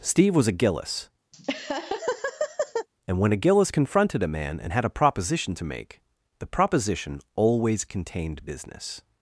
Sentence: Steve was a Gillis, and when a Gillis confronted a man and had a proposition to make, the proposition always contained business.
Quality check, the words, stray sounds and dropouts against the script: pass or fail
fail